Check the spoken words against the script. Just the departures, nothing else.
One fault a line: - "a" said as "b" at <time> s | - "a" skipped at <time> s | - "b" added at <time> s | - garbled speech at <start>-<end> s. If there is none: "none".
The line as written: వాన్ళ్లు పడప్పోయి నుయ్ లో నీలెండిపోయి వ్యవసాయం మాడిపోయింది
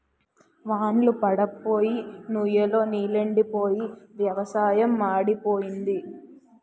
none